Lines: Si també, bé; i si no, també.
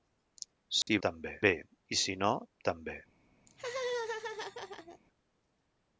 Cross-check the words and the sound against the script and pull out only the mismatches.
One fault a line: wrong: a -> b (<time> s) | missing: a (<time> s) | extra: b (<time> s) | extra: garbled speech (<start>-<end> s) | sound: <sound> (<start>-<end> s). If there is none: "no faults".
sound: dropout (0.8-0.9 s)
sound: laugh (3.5-5.0 s)